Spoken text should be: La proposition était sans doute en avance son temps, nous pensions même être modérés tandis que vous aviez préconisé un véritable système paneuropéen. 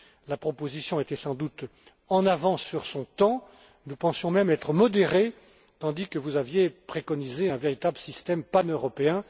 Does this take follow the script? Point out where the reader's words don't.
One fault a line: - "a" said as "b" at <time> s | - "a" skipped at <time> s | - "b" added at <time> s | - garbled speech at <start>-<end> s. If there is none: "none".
- "sur" added at 2.6 s